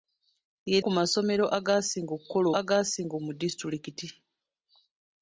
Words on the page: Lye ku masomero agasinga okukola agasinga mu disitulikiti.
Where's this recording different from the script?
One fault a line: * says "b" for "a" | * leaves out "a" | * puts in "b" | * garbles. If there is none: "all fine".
all fine